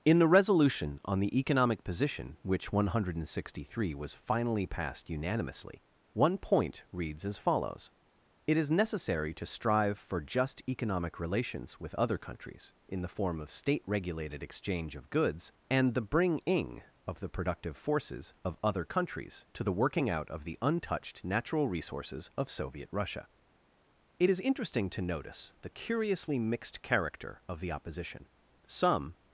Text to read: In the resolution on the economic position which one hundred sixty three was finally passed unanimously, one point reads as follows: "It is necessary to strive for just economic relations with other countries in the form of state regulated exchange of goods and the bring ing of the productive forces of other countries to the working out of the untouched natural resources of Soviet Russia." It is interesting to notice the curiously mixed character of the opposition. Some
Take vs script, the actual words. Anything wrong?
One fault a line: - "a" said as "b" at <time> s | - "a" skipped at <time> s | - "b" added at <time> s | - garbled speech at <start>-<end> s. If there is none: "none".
none